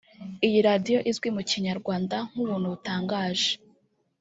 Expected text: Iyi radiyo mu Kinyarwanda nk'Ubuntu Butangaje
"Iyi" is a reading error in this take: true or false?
false